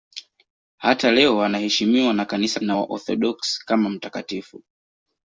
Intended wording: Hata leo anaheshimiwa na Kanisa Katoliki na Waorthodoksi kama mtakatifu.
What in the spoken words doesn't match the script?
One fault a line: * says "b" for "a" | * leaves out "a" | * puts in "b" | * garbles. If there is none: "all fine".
* leaves out "Katoliki"